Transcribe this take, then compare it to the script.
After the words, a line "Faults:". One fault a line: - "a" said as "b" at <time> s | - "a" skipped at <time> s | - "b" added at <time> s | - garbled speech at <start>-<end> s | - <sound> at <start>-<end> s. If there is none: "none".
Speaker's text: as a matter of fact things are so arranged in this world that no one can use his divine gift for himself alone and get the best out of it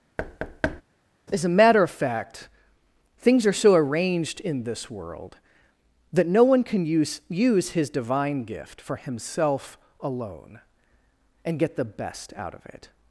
as a matter of fact things are so arranged in this world that no one can use use his divine gift for himself alone and get the best out of it
Faults:
- thud at 0.2-0.8 s
- "use" added at 7.3 s